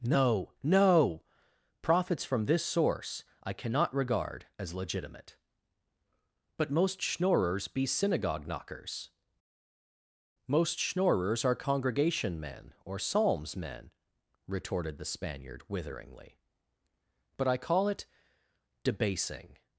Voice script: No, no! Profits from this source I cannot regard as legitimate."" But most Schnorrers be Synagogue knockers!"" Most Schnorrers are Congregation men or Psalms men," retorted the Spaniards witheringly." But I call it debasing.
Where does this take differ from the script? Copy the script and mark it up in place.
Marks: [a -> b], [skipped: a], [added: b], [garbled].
No, no! Profits from this source I cannot regard as legitimate."" But most Schnorrers be Synagogue knockers!"" Most Schnorrers are Congregation men or Psalms men," retorted the [Spaniards -> Spaniard] witheringly." But I call it debasing.